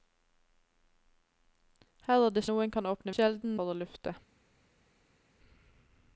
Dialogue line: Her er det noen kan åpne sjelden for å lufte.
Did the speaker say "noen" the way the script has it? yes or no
yes